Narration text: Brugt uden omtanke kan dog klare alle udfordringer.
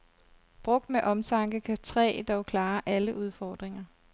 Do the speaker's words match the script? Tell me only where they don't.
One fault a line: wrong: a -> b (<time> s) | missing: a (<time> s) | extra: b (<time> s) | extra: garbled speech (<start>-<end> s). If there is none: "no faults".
wrong: uden -> med (0.9 s)
extra: træ (1.8 s)